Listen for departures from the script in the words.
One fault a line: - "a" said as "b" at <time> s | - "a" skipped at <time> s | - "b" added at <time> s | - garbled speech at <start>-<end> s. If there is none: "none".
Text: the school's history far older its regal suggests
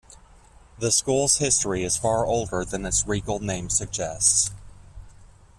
- "is" added at 1.8 s
- "than" added at 2.6 s
- "name" added at 3.4 s